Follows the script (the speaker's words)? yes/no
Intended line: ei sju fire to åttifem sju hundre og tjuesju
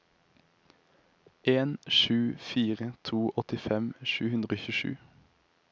no